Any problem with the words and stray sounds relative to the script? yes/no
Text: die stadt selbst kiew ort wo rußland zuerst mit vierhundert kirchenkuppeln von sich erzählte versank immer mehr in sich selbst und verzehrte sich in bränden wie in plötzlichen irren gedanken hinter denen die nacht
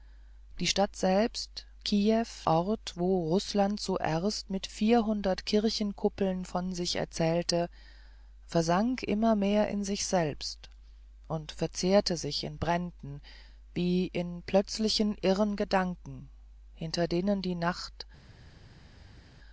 no